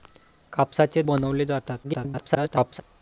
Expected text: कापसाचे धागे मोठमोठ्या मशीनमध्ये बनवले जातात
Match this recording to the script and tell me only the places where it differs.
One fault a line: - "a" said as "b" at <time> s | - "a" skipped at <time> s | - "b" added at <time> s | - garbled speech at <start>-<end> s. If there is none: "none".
- "धागे मोठमोठ्या मशीनमध्ये" skipped at 1.0 s
- garbled speech at 1.8-2.8 s